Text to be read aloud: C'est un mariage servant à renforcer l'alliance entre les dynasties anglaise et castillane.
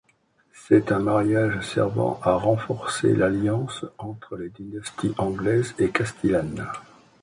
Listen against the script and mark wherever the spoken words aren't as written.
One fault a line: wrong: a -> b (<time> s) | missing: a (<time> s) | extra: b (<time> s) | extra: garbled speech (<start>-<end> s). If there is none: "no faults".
no faults